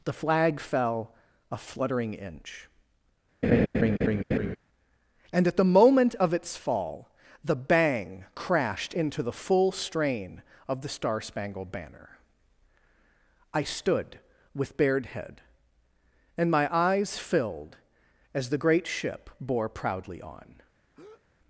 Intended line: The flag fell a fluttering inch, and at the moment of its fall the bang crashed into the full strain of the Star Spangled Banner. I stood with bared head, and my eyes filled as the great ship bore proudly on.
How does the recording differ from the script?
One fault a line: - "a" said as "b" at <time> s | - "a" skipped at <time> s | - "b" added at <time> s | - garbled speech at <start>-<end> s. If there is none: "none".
none